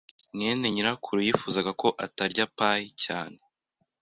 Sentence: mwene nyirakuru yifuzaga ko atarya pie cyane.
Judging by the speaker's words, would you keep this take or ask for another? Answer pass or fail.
pass